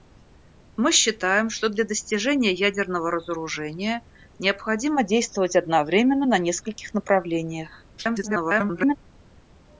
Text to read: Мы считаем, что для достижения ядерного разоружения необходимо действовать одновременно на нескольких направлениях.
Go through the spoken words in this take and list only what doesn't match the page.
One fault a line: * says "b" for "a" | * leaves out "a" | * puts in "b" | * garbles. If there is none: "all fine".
* garbles